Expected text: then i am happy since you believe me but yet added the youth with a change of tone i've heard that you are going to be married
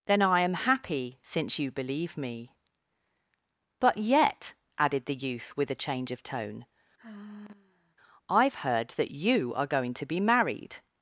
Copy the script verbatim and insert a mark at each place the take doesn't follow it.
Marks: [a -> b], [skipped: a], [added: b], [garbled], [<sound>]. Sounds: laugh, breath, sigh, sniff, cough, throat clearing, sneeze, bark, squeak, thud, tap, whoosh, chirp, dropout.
then i am happy since you believe me but yet added the youth with a change of tone [sigh] i've heard that you are going to be married